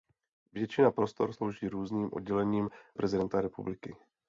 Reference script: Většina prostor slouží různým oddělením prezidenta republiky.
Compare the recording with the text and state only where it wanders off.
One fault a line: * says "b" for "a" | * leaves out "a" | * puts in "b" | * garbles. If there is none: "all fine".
all fine